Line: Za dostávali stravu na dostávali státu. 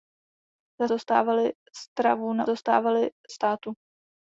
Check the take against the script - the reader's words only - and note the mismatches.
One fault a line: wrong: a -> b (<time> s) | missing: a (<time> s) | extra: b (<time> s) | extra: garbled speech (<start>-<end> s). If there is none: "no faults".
no faults